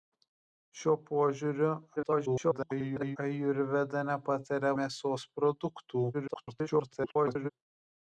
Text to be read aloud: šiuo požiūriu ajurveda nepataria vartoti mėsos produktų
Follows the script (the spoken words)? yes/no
no